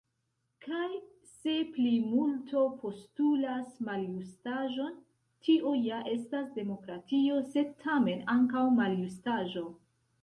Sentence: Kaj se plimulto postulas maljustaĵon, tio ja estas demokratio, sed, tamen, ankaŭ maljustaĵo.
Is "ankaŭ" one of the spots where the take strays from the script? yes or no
no